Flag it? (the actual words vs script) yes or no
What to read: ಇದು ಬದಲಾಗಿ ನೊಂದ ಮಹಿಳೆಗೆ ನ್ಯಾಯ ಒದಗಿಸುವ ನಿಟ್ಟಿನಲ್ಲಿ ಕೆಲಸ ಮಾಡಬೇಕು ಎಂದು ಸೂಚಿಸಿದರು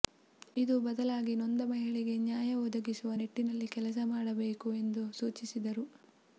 no